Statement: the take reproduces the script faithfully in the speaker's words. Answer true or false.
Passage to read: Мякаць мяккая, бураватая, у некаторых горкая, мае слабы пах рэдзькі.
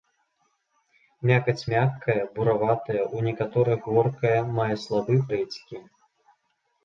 false